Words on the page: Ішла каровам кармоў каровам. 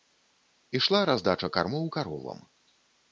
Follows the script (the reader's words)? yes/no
no